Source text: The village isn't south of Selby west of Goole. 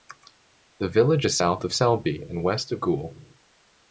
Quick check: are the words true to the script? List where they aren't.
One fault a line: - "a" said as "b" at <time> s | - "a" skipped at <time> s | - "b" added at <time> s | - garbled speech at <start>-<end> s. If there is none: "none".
- "isn't" said as "is" at 1.2 s
- "and" added at 2.2 s